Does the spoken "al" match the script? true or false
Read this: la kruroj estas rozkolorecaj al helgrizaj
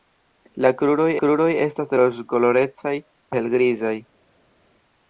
false